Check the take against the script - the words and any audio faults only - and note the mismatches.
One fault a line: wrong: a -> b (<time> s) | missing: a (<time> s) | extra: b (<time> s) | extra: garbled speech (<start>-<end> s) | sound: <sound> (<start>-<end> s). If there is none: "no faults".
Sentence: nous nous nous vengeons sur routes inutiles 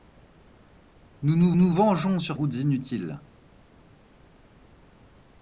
no faults